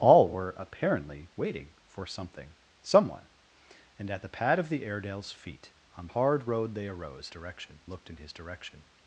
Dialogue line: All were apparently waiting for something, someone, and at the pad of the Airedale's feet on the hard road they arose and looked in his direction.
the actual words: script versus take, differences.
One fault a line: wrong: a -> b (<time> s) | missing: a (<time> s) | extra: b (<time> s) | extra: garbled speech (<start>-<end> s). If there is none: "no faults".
missing: the (6.1 s)
wrong: and -> direction (7.3 s)